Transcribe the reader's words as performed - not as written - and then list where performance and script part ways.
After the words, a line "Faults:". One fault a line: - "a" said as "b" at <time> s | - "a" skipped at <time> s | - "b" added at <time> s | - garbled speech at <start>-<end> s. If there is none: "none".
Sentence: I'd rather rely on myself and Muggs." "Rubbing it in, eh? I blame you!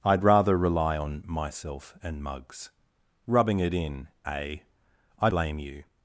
I'd rather rely on myself and Muggs." "Rubbing it in, eh? I blame you!
Faults:
none